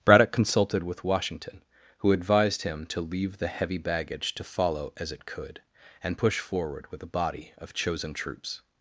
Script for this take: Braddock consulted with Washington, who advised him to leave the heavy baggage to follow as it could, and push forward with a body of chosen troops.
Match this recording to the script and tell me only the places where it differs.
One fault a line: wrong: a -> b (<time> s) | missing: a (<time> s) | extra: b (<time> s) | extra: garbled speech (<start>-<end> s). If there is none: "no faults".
no faults